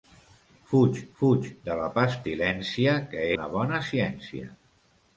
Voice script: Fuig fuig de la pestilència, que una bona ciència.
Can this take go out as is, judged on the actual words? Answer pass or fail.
pass